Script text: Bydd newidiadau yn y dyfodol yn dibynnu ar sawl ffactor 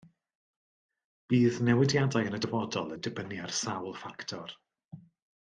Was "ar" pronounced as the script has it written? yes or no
yes